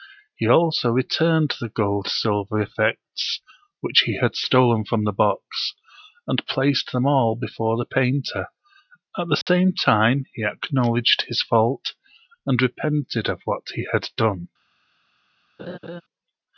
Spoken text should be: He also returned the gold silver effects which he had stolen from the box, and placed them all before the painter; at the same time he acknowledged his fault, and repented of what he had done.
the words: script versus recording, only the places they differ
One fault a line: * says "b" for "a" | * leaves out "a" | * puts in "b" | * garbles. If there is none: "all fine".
all fine